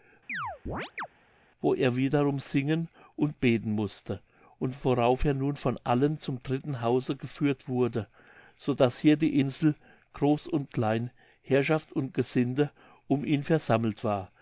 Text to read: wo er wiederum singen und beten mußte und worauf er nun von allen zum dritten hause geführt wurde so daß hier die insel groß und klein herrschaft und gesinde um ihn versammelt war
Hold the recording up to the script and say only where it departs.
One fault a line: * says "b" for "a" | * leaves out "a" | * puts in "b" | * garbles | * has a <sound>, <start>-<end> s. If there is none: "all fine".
* has a chirp, 0.3-1.1 s